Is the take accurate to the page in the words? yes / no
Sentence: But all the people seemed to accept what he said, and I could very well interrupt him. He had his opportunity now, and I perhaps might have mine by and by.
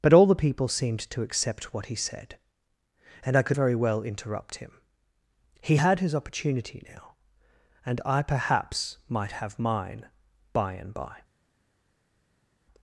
yes